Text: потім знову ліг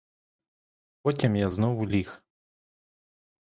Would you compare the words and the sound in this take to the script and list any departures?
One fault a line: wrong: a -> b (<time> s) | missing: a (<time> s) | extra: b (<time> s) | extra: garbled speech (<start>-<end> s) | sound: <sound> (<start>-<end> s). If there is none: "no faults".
extra: я (1.4 s)